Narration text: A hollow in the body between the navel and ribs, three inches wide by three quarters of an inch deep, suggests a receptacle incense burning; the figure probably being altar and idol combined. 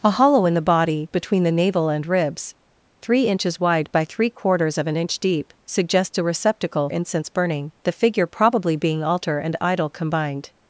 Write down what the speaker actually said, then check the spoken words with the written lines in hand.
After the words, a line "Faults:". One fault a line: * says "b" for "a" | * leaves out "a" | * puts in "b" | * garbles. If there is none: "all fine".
A hollow in the body between the navel and ribs, three inches wide by three quarters of an inch deep, suggests a receptacle incense burning; the figure probably being altar and idol combined.
Faults:
all fine